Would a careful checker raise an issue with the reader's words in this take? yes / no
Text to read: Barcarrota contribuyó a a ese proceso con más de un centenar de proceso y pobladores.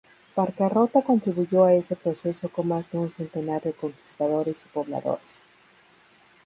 yes